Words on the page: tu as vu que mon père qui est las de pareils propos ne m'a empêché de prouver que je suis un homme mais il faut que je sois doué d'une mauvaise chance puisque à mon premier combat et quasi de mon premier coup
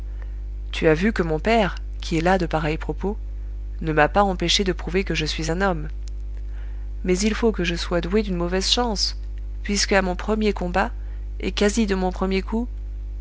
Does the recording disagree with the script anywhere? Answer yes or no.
yes